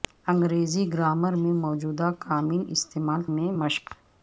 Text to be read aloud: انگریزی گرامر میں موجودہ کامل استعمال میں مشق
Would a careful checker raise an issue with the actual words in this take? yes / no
no